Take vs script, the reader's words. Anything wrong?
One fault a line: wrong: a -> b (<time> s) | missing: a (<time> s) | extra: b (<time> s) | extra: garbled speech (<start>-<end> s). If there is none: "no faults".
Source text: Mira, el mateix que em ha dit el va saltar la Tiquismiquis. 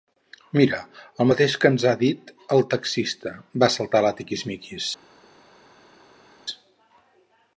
wrong: em -> ens (1.7 s)
extra: taxista (2.7 s)